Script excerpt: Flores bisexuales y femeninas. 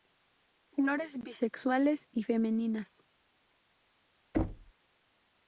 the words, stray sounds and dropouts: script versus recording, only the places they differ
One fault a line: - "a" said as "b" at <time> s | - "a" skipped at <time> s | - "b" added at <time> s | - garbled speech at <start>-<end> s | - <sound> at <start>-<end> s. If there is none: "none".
- thud at 4.3-4.7 s